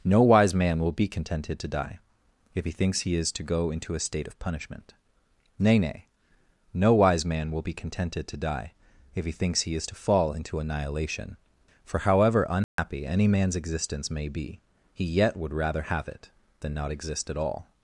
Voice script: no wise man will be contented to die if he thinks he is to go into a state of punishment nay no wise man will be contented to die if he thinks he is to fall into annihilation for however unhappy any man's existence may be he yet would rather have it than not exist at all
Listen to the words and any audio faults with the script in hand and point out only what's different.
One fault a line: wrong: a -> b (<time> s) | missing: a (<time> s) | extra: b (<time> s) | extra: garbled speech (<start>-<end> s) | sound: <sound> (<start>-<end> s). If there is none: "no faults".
extra: nay (5.8 s)
sound: dropout (12.6-12.8 s)